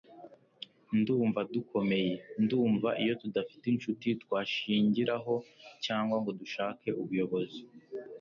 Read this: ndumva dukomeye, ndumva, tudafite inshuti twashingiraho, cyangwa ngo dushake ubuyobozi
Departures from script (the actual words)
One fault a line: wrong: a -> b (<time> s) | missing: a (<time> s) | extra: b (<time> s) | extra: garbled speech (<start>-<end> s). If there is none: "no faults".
extra: iyo (3.0 s)